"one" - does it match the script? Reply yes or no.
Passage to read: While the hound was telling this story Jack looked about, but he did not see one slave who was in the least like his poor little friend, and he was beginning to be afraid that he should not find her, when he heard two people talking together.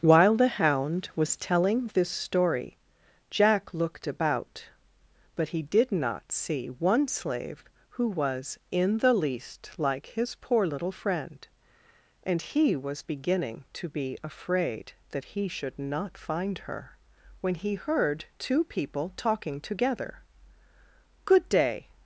yes